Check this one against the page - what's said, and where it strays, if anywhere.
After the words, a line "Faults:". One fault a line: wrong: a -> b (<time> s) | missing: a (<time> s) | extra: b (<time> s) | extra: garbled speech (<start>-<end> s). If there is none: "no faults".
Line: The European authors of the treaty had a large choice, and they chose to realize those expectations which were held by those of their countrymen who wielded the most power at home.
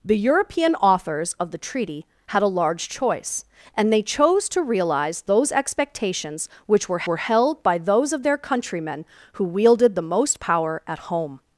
The European authors of the treaty had a large choice, and they chose to realize those expectations which were were held by those of their countrymen who wielded the most power at home.
Faults:
extra: were (7.1 s)